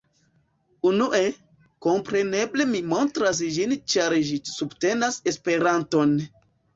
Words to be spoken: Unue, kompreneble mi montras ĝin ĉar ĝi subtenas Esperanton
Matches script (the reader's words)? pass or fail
pass